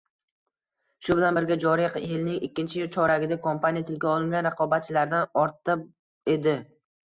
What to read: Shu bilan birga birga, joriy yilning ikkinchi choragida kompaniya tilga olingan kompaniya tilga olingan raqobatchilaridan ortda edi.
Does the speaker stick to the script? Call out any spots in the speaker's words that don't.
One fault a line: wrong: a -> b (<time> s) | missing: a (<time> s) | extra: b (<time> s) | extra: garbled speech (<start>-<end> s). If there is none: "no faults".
missing: birga (1.6 s)
missing: kompaniya tilga olingan (4.5 s)